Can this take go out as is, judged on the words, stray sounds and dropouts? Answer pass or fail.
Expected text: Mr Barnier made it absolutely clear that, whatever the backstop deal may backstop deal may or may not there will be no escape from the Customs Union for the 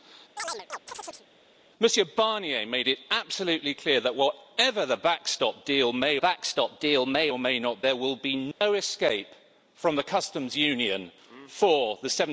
fail